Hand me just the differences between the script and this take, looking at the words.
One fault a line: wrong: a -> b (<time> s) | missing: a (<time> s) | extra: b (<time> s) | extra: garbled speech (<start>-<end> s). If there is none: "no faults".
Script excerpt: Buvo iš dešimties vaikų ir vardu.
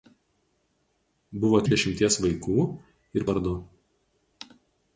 no faults